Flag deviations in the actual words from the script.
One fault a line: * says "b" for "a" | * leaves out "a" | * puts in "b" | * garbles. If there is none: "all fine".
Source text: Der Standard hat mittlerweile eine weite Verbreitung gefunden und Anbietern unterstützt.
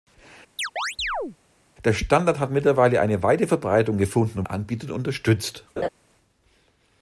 all fine